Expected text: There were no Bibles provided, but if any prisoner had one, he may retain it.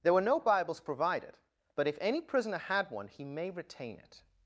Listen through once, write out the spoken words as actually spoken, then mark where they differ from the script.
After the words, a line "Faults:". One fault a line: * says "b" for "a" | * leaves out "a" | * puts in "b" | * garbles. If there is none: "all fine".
There were no Bibles provided, but if any prisoner had one, he may retain it.
Faults:
all fine